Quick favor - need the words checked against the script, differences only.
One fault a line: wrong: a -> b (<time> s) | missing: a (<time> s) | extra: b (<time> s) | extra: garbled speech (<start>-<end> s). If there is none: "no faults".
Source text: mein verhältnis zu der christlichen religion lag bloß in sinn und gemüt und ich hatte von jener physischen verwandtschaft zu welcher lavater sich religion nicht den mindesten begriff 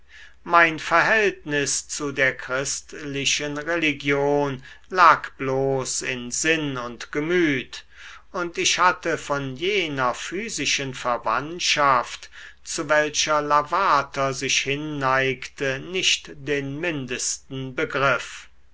wrong: religion -> hinneigte (14.6 s)